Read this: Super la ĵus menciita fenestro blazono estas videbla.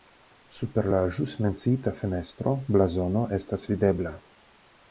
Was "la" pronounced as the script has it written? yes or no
yes